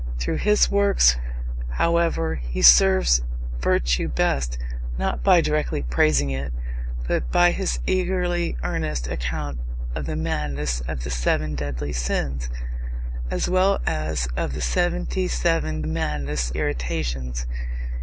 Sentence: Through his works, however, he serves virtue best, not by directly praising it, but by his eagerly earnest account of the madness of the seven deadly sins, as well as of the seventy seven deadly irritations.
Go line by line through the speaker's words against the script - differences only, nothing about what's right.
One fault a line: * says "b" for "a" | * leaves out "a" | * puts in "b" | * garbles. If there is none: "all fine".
* says "madness" for "deadly"